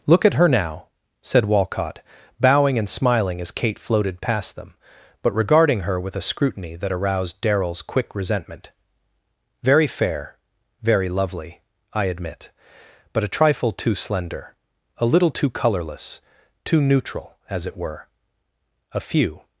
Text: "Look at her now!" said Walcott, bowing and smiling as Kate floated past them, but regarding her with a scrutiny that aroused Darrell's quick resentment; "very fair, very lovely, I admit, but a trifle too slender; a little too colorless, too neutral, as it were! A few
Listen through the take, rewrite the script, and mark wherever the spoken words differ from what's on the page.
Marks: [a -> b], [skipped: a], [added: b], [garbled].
"Look at her now!" said Walcott, bowing and smiling as Kate floated past them, but regarding her with a scrutiny that aroused Darrell's quick resentment; "very fair, very lovely, I admit, but a trifle too slender; a little too colorless, too neutral, as it were! A few